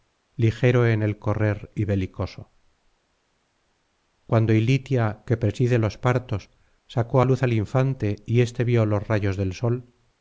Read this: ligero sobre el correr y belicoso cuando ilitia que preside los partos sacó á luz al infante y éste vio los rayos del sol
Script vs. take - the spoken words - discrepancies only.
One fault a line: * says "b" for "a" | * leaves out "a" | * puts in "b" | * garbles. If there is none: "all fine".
* says "en" for "sobre"